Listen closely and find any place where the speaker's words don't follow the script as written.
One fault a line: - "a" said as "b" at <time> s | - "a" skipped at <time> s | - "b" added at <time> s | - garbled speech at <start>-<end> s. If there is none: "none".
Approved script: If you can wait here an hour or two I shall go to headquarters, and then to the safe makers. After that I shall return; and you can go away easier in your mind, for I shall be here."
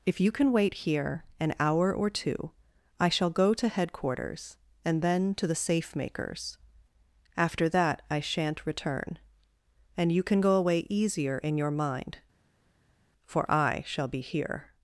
- "shall" said as "shan't" at 8.2 s